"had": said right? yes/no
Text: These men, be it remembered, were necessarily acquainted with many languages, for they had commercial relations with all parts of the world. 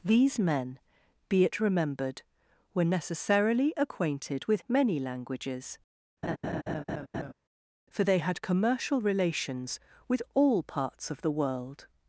yes